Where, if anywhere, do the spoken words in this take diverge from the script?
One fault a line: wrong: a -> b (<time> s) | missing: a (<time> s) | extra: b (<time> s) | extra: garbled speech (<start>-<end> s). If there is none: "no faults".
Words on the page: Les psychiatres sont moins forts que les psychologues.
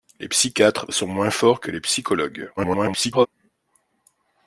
extra: garbled speech (2.6-3.3 s)